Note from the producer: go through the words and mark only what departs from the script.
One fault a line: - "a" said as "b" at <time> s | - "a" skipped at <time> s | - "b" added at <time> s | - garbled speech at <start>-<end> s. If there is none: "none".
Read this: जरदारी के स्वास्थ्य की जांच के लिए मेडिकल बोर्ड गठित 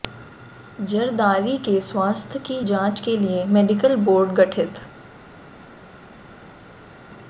none